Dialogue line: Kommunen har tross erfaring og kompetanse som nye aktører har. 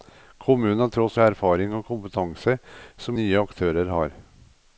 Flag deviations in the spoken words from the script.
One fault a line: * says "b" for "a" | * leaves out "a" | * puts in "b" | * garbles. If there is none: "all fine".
all fine